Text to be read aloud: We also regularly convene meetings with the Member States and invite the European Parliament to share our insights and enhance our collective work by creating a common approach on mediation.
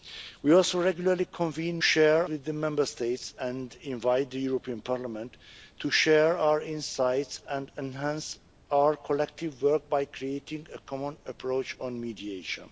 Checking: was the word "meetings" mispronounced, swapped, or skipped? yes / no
yes